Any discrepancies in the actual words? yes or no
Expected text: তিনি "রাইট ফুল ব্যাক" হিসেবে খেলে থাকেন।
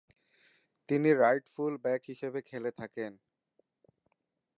no